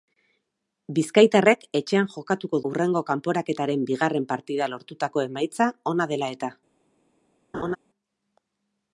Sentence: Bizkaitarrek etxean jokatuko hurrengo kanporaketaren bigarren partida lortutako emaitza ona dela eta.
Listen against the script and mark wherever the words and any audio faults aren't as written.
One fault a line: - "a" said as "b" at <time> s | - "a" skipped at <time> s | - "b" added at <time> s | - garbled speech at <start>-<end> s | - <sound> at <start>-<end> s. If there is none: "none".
- laugh at 7.5-7.8 s